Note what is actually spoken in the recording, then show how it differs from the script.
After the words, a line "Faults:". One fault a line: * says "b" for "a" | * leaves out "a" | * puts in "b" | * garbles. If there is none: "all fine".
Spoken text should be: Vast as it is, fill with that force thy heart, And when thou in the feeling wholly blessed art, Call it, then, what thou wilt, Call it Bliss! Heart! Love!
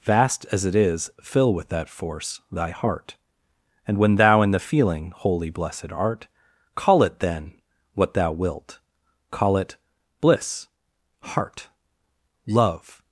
Vast as it is, fill with that force thy heart, And when thou in the feeling wholly blessed art, Call it, then, what thou wilt, Call it Bliss! Heart! Love!
Faults:
all fine